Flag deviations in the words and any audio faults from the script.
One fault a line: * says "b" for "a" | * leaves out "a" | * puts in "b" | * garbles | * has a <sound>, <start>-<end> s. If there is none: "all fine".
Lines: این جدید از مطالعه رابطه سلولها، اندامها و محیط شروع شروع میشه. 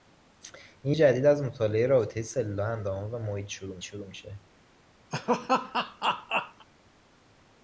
* has a laugh, 5.1-6.7 s